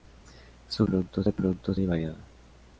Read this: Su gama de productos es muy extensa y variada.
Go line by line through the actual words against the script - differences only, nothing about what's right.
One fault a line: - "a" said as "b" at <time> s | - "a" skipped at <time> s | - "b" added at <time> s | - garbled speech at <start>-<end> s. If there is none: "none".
- "gama" said as "productos" at 0.8 s
- "es muy extensa" skipped at 1.8 s